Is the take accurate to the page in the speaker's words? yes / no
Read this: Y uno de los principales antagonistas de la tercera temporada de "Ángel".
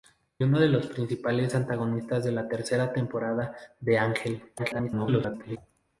no